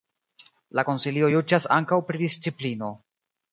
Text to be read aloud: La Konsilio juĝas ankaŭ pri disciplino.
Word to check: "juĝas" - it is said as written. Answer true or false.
true